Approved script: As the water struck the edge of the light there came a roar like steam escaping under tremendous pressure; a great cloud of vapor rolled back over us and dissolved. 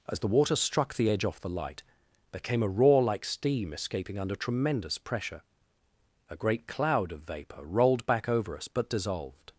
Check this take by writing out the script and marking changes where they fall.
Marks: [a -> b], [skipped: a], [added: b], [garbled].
As the water struck the edge [of -> off] the light there came a roar like steam escaping under tremendous pressure; a great cloud of vapor rolled back over us [and -> but] dissolved.